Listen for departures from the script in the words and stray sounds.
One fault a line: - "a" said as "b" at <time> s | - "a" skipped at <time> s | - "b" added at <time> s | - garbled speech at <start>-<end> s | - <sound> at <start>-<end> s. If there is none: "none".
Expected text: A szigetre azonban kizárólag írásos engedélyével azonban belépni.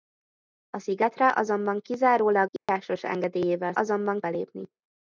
- dropout at 2.6-2.7 s